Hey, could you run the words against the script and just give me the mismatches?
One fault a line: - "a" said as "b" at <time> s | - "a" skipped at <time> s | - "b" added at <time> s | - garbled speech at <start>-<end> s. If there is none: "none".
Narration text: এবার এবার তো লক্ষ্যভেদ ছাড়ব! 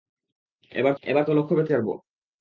none